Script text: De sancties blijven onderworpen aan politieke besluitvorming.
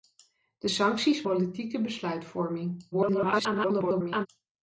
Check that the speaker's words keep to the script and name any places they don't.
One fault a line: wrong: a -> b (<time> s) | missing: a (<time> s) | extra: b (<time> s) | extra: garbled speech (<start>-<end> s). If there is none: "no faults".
missing: blijven onderworpen aan (1.2 s)
extra: garbled speech (2.9-4.3 s)